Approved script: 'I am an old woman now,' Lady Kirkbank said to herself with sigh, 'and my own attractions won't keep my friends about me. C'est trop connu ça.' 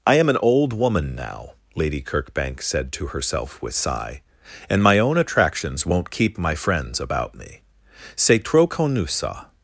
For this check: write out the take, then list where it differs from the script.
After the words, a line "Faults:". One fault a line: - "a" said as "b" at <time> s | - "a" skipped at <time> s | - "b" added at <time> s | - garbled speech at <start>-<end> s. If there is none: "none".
'I am an old woman now,' Lady Kirkbank said to herself with sigh, 'and my own attractions won't keep my friends about me. C'est trop connu ça.'
Faults:
none